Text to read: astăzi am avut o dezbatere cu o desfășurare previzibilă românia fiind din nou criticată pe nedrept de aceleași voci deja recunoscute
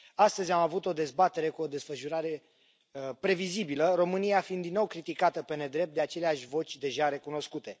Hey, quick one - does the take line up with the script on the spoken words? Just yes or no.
yes